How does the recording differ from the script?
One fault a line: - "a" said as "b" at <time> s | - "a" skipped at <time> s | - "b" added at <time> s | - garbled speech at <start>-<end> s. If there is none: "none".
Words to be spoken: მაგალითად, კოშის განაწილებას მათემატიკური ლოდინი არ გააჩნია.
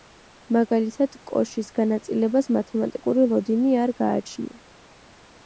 none